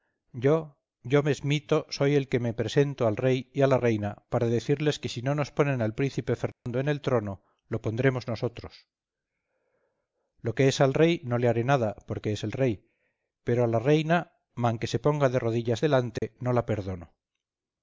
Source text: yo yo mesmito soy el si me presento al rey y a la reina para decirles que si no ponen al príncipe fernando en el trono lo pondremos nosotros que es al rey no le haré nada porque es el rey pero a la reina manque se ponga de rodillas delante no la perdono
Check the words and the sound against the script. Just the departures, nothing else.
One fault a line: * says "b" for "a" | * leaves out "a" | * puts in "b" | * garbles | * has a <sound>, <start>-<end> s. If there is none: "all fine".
* says "que" for "si"
* puts in "nos"
* has a dropout, 6.5-6.7 s
* puts in "lo"
* has a dropout, 16.2-16.2 s